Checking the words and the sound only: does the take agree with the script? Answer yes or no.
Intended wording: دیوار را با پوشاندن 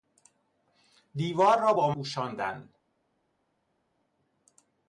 yes